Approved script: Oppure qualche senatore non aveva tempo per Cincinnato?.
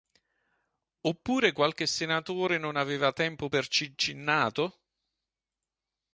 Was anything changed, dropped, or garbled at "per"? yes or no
no